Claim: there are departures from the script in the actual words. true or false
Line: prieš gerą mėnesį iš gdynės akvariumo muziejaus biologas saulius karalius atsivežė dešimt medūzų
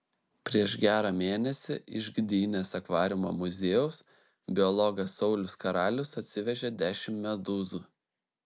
false